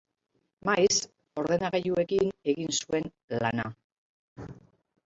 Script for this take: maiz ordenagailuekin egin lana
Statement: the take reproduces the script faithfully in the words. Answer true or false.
false